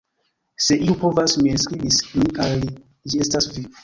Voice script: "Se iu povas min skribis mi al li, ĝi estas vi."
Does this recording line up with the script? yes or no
yes